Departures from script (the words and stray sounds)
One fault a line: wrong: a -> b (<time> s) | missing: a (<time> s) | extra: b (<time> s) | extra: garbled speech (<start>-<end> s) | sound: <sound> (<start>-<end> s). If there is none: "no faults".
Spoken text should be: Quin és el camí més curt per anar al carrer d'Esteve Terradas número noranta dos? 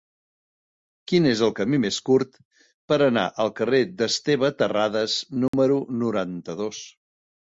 sound: dropout (5.5-5.5 s)